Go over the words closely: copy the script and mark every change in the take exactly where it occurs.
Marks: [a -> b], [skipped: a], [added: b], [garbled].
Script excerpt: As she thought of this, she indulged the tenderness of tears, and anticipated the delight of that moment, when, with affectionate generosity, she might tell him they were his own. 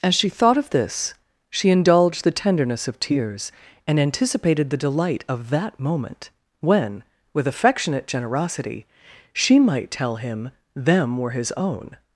As she thought of this, she indulged the tenderness of tears, and anticipated the delight of that moment, when, with affectionate generosity, she might tell him [they -> them] were his own.